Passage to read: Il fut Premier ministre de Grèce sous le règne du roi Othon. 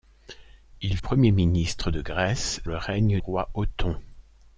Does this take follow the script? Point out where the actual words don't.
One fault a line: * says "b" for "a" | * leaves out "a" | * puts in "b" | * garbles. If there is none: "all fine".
* leaves out "fut"
* leaves out "sous"
* leaves out "du"